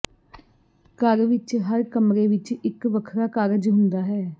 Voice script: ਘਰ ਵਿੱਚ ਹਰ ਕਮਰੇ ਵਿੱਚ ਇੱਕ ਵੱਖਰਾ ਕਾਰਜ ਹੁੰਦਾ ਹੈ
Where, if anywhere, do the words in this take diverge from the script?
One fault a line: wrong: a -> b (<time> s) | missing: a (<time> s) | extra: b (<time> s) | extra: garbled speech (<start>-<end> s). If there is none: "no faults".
no faults